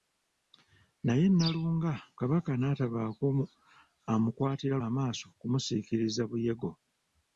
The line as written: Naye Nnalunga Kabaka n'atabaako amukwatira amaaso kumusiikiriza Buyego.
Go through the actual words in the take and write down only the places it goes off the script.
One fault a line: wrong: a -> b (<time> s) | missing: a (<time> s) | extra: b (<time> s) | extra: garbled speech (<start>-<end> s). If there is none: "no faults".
no faults